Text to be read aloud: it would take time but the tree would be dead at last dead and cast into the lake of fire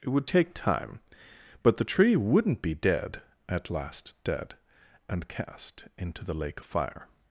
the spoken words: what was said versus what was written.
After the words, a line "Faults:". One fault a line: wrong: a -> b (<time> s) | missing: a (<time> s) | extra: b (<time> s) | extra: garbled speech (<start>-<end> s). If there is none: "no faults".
it would take time but the tree wouldn't be dead at last dead and cast into the lake of fire
Faults:
wrong: would -> wouldn't (2.1 s)